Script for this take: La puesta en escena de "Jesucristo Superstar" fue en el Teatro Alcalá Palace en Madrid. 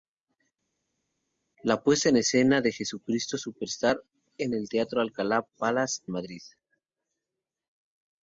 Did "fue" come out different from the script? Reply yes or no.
yes